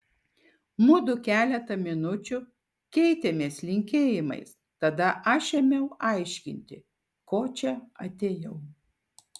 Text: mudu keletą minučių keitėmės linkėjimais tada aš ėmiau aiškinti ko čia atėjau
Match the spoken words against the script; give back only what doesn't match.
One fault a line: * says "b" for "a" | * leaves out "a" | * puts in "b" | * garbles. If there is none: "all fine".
all fine